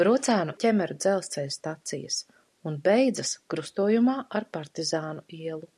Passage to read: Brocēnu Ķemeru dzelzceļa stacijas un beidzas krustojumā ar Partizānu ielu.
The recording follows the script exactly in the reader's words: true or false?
true